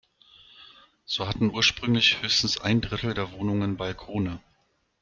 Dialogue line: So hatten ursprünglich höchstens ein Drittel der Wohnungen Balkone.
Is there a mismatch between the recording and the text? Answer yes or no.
no